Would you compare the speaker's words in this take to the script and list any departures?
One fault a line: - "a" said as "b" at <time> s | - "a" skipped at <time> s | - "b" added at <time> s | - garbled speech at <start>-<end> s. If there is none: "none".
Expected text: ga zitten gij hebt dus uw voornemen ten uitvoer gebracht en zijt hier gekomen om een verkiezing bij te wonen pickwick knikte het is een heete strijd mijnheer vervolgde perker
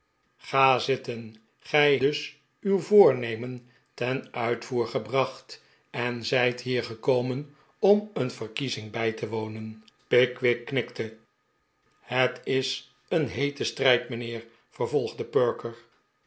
- "hebt" skipped at 2.0 s